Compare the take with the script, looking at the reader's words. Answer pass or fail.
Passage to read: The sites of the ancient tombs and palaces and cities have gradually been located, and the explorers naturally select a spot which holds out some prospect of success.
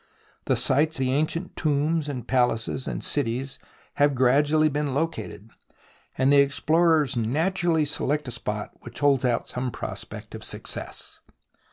fail